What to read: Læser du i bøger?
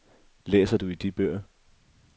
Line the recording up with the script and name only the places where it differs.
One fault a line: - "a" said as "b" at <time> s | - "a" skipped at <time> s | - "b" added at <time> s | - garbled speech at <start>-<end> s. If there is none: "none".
- "de" added at 1.0 s